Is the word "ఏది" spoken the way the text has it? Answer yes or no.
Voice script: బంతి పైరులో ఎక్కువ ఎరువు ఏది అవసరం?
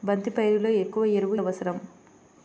no